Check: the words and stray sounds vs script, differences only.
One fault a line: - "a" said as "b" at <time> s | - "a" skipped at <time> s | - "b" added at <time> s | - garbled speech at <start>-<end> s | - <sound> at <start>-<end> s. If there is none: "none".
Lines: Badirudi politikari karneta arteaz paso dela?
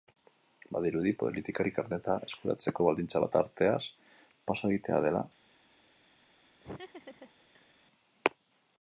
- "eskuratzeko baldintza bat" added at 2.3 s
- "egitea" added at 4.7 s
- laugh at 6.6-7.7 s